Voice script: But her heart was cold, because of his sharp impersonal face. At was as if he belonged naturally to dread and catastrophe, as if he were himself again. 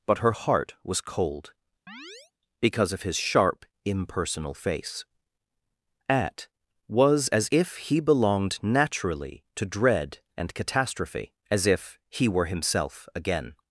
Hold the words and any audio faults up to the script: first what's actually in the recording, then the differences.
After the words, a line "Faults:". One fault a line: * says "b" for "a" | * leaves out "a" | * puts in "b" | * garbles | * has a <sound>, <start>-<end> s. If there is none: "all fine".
But her heart was cold, because of his sharp impersonal face. At was as if he belonged naturally to dread and catastrophe, as if he were himself again.
Faults:
* has a chirp, 1.9-2.3 s